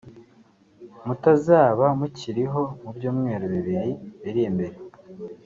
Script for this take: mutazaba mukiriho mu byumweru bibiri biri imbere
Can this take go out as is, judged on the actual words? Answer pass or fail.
pass